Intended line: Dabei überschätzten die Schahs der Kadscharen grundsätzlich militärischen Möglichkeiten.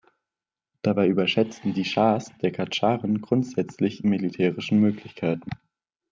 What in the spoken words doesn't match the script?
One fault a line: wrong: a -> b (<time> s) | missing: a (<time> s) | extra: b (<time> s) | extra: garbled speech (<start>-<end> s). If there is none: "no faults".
no faults